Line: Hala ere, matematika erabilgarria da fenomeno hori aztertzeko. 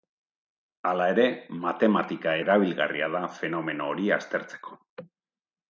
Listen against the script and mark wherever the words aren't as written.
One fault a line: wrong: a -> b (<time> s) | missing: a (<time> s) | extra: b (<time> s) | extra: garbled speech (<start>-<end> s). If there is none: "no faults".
no faults